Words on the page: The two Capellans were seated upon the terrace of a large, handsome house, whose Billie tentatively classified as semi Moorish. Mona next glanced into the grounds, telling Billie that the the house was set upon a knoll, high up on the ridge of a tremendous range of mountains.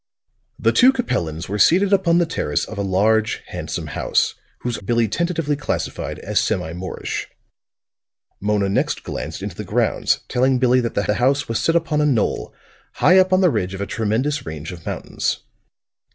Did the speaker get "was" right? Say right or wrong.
right